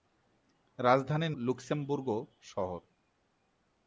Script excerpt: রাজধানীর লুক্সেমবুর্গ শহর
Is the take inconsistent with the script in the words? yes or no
no